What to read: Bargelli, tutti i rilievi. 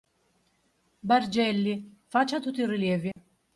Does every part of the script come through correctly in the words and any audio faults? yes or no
no